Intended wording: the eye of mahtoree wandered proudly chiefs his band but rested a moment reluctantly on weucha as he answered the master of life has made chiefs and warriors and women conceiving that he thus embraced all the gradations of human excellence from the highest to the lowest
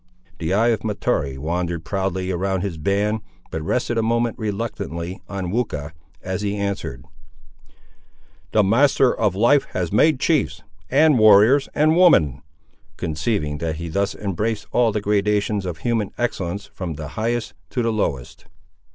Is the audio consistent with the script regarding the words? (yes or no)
no